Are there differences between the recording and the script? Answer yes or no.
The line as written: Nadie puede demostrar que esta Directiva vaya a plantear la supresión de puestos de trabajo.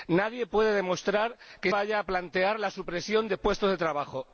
yes